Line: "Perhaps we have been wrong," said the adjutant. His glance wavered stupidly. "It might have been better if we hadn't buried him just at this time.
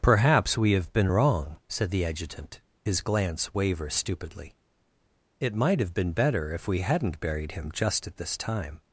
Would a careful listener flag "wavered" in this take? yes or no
yes